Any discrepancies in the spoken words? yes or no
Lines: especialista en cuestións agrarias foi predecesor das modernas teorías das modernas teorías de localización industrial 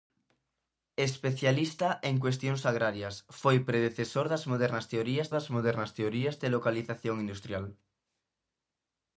no